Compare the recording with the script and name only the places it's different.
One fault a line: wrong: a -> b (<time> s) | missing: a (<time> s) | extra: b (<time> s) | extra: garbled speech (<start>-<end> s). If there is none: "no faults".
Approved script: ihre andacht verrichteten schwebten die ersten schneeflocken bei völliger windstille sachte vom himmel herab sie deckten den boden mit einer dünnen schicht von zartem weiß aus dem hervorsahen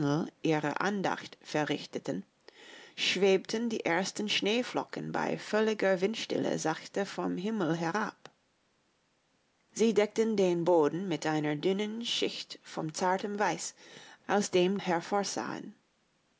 no faults